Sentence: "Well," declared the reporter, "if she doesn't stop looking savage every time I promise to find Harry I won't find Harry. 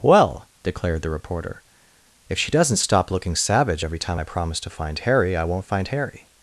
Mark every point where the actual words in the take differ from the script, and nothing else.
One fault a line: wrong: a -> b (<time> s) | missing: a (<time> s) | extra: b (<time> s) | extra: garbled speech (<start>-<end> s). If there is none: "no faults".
no faults